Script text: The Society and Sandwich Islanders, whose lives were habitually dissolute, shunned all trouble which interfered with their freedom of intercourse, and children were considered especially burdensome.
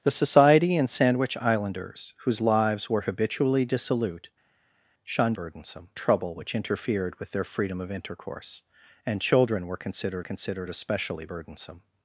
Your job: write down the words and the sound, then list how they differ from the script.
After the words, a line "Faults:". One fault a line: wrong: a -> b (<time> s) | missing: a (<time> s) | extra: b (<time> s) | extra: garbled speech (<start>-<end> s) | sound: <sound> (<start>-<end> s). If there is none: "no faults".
The Society and Sandwich Islanders, whose lives were habitually dissolute, shunned burdensome trouble which interfered with their freedom of intercourse, and children were considered considered especially burdensome.
Faults:
wrong: all -> burdensome (5.3 s)
extra: considered (10.2 s)